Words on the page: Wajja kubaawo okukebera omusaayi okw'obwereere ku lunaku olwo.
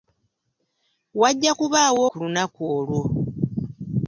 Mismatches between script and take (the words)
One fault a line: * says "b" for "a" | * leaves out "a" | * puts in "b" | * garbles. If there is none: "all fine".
* leaves out "okukebera omusaayi okw'obwereere"